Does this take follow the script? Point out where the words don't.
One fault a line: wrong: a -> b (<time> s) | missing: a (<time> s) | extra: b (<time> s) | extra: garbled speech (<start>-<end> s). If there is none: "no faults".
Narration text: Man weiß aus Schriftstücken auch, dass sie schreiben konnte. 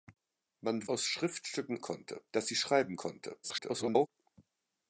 missing: weiß (0.9 s)
wrong: auch -> konnte (1.8 s)
extra: garbled speech (3.4-4.1 s)